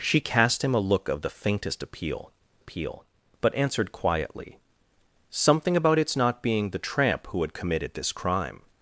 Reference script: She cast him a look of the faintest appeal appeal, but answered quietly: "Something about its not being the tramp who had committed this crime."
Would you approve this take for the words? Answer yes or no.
yes